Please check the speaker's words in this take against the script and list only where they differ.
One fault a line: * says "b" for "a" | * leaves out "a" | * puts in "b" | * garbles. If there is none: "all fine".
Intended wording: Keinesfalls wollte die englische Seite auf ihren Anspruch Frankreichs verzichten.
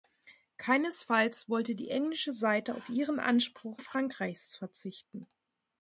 all fine